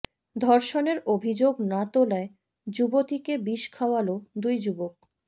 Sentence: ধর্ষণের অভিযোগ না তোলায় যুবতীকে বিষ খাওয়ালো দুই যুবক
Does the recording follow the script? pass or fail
pass